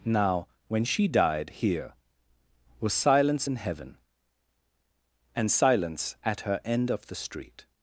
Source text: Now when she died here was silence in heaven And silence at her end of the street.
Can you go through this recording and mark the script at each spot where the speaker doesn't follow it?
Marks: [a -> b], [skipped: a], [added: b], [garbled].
Now when she died here was silence in heaven And silence at her end of the street.